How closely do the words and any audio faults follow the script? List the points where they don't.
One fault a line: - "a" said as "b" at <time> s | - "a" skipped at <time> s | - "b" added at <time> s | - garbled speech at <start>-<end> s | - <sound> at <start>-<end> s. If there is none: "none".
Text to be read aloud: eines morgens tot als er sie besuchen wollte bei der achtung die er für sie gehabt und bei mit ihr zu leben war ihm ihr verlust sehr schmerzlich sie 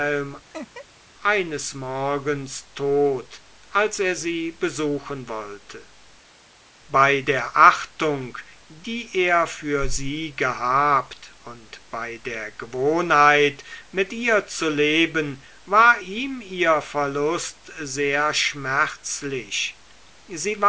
- laugh at 0.5-0.9 s
- "der gewohnheit" added at 12.2 s